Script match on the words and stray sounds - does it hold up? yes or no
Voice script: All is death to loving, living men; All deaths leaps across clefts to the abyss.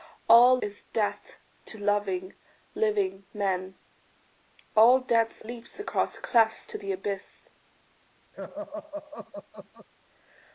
no